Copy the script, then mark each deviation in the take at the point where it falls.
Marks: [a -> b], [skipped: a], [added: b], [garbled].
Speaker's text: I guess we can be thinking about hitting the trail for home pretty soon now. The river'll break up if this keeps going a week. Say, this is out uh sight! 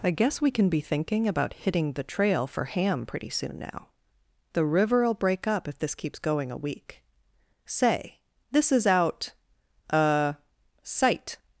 I guess we can be thinking about hitting the trail for [home -> ham] pretty soon now. The river'll break up if this keeps going a week. Say, this is out uh sight!